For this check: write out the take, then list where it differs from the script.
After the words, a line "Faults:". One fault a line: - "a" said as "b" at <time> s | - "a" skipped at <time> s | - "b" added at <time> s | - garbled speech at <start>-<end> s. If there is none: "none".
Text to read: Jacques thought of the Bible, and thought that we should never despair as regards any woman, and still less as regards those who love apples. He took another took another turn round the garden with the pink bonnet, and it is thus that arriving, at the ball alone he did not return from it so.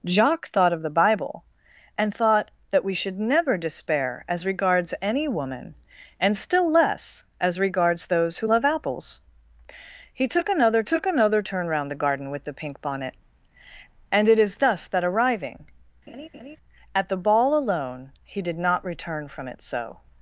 Jacques thought of the Bible, and thought that we should never despair as regards any woman, and still less as regards those who love apples. He took another took another turn round the garden with the pink bonnet, and it is thus that arriving, at the ball alone he did not return from it so.
Faults:
none